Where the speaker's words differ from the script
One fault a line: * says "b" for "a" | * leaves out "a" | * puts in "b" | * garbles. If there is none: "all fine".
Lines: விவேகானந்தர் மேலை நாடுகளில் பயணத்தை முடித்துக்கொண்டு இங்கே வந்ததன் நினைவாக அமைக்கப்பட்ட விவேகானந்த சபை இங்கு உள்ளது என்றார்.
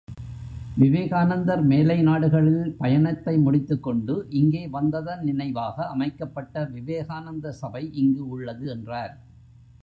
all fine